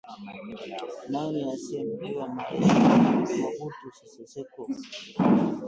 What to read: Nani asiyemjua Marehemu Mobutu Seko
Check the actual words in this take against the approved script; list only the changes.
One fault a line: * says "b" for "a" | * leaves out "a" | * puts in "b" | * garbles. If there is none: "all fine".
* puts in "Sese"